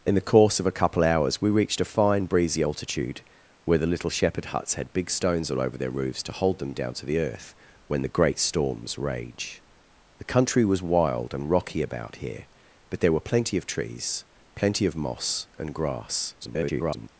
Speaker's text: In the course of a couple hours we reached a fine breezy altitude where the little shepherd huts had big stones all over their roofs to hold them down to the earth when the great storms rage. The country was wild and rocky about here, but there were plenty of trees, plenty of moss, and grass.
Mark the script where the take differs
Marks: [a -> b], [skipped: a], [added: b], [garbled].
In the course of a couple hours we reached a fine breezy altitude where the little shepherd huts had big stones all over their roofs to hold them down to the earth when the great storms rage. The country was wild and rocky about here, but there were plenty of trees, plenty of moss, and grass. [garbled]